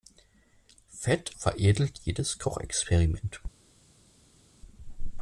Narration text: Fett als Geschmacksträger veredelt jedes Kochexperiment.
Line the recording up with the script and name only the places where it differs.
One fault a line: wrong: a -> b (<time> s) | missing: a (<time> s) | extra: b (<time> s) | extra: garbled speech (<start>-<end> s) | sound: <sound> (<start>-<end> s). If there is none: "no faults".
missing: als Geschmacksträger (1.3 s)